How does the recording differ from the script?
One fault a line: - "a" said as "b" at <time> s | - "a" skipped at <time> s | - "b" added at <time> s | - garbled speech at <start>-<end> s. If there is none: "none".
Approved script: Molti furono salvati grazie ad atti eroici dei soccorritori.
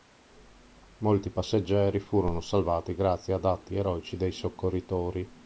- "passeggeri" added at 1.3 s